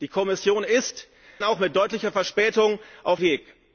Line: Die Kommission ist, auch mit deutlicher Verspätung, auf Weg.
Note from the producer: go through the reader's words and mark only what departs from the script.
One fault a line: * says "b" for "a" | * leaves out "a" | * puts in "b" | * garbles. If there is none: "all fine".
all fine